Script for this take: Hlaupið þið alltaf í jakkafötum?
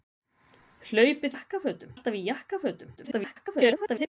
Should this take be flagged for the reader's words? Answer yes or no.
yes